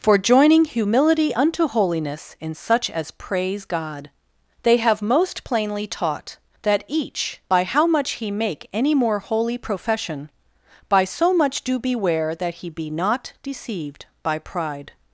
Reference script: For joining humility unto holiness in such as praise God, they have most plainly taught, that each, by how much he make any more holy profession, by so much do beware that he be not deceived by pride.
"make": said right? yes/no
yes